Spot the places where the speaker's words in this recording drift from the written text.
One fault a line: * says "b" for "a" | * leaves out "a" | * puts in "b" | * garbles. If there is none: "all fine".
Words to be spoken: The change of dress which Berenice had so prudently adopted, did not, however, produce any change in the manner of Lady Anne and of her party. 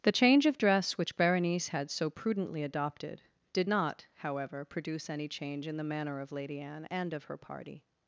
all fine